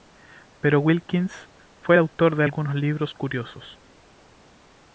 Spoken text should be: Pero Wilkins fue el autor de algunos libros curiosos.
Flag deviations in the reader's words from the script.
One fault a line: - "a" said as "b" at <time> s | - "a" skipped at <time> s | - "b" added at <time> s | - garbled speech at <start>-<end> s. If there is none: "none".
none